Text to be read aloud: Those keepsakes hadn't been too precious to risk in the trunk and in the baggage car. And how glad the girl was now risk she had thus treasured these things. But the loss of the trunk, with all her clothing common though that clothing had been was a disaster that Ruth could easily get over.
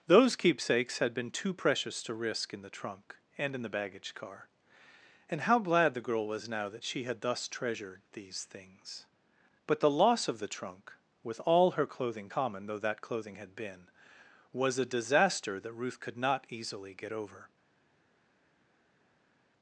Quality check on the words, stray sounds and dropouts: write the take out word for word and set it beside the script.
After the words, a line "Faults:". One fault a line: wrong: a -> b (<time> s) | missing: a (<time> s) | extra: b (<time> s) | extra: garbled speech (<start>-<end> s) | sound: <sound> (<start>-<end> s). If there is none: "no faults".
Those keepsakes had been too precious to risk in the trunk and in the baggage car. And how glad the girl was now that she had thus treasured these things. But the loss of the trunk, with all her clothing common though that clothing had been was a disaster that Ruth could not easily get over.
Faults:
wrong: hadn't -> had (1.0 s)
wrong: risk -> that (6.7 s)
extra: not (16.2 s)